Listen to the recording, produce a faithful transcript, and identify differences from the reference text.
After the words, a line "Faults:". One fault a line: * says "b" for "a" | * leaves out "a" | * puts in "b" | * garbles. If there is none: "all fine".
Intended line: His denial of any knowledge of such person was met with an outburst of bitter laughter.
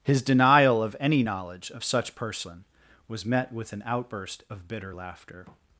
His denial of any knowledge of such person was met with an outburst of bitter laughter.
Faults:
all fine